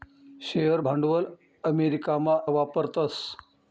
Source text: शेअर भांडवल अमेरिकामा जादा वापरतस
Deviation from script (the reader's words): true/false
true